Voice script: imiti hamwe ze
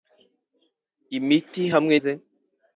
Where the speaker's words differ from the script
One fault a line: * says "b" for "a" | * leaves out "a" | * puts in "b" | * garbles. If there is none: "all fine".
all fine